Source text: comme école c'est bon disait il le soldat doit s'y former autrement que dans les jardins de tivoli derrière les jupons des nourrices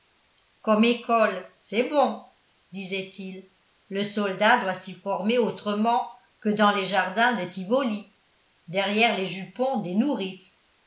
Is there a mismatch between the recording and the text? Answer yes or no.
no